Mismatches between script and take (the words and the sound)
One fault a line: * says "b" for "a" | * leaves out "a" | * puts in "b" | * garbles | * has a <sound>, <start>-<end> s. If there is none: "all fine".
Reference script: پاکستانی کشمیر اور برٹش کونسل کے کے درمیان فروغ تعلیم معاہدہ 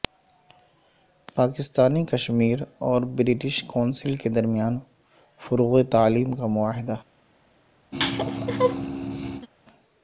* leaves out "کے"
* puts in "کا"
* has a laugh, 7.9-9.5 s